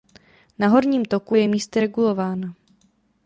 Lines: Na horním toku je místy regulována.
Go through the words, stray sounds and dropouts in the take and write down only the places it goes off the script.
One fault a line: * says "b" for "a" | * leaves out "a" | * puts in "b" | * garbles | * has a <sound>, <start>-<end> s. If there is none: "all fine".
all fine